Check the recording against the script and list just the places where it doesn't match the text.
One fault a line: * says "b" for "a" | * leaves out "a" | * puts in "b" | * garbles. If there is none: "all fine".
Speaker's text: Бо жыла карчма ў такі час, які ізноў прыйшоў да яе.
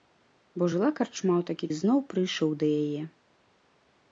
* leaves out "час які"